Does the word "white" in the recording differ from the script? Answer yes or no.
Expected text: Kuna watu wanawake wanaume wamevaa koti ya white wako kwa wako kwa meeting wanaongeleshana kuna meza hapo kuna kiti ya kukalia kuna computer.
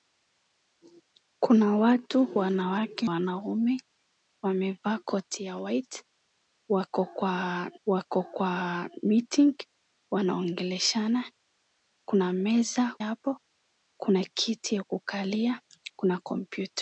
no